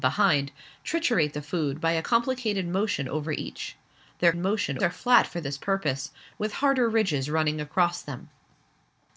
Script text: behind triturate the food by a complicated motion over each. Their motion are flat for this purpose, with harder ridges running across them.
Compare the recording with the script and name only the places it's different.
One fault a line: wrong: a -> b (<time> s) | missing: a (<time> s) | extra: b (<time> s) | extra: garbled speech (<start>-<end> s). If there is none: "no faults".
no faults